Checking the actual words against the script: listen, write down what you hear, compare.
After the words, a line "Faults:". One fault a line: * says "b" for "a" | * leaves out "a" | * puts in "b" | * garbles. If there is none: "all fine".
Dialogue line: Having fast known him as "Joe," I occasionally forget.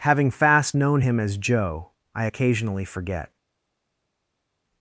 Having fast known him as "Joe," I occasionally forget.
Faults:
all fine